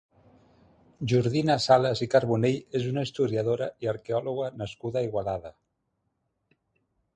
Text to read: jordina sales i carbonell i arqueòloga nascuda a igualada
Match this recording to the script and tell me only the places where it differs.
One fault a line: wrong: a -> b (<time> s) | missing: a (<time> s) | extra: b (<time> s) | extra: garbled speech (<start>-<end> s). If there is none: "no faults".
extra: és una historiadora (2.8 s)